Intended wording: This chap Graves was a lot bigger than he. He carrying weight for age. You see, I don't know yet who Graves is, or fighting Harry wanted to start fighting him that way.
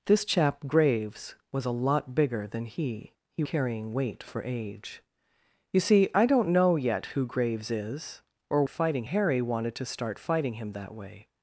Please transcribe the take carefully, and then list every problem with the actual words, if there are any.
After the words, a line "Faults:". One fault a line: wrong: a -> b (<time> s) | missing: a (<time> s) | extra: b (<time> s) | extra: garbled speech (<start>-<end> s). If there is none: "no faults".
This chap Graves was a lot bigger than he. He carrying weight for age. You see, I don't know yet who Graves is, or fighting Harry wanted to start fighting him that way.
Faults:
no faults